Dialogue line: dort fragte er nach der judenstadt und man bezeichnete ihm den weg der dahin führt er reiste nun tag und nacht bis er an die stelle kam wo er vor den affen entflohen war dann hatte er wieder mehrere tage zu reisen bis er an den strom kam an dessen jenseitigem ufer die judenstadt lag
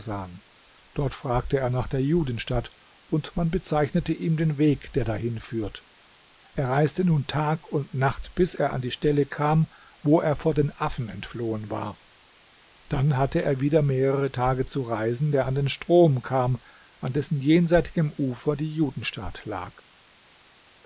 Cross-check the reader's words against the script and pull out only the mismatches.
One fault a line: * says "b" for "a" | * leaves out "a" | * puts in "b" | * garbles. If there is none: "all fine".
* leaves out "bis"